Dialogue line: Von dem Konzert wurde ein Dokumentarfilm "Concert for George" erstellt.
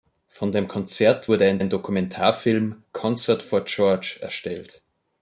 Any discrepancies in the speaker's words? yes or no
yes